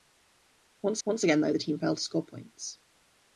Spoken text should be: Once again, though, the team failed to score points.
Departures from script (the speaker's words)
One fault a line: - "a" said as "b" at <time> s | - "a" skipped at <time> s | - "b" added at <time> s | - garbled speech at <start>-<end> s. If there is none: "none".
- "once" added at 1.0 s